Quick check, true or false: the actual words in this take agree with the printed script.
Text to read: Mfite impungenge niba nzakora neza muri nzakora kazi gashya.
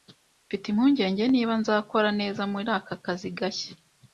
false